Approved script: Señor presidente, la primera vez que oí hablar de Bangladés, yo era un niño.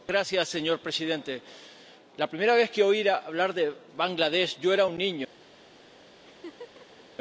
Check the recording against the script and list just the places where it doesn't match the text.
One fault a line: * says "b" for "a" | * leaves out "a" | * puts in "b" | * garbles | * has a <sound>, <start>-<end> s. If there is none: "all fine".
* has a laugh, 6.2-7.0 s